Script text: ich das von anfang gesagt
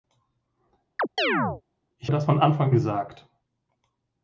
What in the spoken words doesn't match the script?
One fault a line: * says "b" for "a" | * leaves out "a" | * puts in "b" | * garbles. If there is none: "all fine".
all fine